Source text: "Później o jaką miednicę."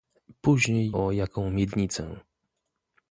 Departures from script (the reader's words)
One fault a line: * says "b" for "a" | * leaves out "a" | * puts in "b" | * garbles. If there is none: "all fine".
all fine